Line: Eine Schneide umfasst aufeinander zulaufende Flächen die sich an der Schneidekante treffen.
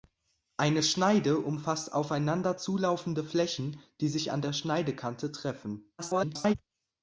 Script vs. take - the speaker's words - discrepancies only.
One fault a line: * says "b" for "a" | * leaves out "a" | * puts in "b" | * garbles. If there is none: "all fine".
* garbles